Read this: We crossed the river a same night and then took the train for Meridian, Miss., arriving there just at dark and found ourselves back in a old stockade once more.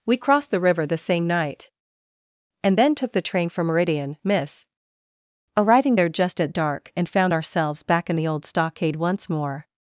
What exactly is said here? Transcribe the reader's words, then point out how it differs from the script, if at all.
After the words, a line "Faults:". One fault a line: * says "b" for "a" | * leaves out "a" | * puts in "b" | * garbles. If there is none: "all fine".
We crossed the river the same night and then took the train for Meridian, Miss., arriving there just at dark and found ourselves back in the old stockade once more.
Faults:
* says "the" for "a"
* says "the" for "a"